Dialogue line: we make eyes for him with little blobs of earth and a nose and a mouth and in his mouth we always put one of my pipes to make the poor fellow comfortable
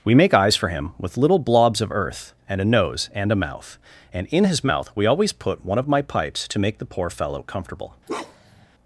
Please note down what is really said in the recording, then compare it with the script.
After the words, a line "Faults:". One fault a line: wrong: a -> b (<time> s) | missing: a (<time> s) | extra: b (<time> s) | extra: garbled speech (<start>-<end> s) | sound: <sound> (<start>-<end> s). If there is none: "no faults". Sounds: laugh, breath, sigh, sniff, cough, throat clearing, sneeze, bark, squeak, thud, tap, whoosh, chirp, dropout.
we make eyes for him with little blobs of earth and a nose and a mouth and in his mouth we always put one of my pipes to make the poor fellow comfortable
Faults:
sound: bark (8.1-8.7 s)